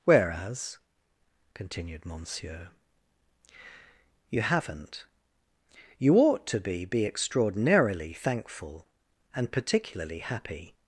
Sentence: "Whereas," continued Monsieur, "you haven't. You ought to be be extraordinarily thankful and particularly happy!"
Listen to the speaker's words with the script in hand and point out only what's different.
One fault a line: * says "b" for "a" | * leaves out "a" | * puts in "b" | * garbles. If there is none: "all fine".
all fine